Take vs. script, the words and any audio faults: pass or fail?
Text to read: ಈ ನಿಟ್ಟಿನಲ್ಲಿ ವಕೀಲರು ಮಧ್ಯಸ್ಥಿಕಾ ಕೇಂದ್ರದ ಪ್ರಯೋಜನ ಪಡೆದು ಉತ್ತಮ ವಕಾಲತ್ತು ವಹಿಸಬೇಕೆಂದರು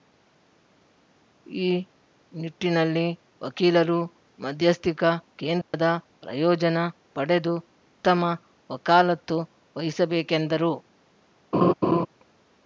fail